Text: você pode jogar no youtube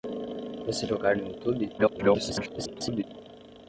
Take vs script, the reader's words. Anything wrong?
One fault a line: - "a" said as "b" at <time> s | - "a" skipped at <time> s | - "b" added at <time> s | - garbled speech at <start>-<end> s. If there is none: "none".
- "pode" skipped at 0.9 s
- garbled speech at 1.8-3.0 s